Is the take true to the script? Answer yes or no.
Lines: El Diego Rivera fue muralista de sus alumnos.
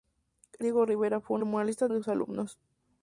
yes